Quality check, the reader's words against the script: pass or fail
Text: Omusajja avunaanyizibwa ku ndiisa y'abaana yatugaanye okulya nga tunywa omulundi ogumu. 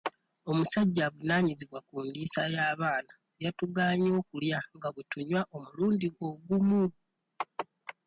fail